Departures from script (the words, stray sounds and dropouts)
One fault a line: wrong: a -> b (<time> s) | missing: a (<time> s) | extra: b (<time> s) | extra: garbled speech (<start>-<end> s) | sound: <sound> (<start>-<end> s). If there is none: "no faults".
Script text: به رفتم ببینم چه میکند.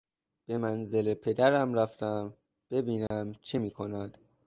extra: منزل پدرم (0.6 s)
sound: dropout (3.1-3.1 s)